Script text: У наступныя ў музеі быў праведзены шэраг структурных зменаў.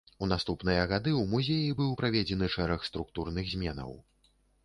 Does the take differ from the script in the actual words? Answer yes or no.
yes